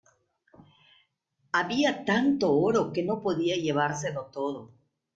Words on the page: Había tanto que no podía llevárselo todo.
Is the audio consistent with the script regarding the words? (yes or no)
no